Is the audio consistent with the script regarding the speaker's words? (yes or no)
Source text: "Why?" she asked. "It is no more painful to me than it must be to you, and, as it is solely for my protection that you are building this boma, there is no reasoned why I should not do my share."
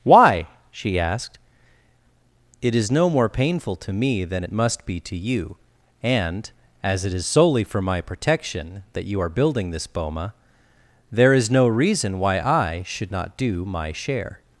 no